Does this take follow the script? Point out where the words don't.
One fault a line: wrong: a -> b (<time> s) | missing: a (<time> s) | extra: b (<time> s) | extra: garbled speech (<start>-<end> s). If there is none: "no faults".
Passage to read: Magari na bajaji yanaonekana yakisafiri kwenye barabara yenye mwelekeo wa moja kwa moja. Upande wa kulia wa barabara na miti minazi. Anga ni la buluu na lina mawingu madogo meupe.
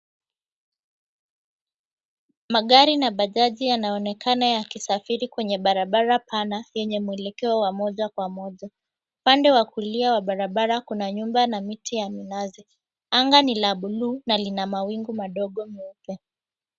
extra: pana (6.2 s)
extra: kuna nyumba (10.8 s)
extra: ya (11.9 s)